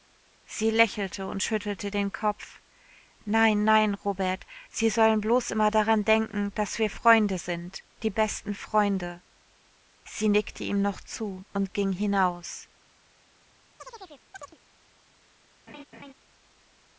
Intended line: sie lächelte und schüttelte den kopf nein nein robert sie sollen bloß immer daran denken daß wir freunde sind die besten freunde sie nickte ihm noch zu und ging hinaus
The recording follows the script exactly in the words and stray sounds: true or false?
false